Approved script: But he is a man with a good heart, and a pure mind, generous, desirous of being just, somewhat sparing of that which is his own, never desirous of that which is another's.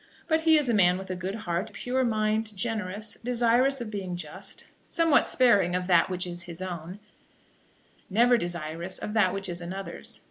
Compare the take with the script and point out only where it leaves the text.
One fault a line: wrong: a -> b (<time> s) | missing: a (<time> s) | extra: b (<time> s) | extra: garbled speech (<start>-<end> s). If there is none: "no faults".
missing: and (1.7 s)